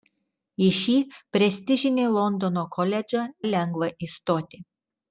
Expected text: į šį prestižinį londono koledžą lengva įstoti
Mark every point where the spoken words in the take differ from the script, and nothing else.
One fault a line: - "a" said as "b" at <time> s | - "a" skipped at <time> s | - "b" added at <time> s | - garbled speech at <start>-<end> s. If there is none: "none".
none